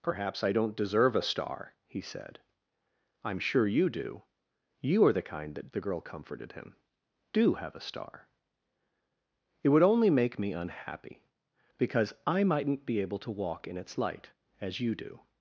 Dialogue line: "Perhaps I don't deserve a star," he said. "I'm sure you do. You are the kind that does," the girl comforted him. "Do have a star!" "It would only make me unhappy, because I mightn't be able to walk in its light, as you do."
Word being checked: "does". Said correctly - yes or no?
no